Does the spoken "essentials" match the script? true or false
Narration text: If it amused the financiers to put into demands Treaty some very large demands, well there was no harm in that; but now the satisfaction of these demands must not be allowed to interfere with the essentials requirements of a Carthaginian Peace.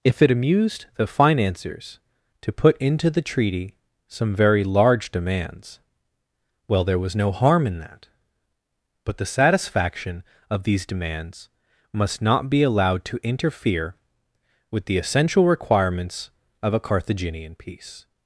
false